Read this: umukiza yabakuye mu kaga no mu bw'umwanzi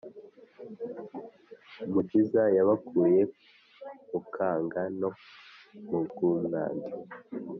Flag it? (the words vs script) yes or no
no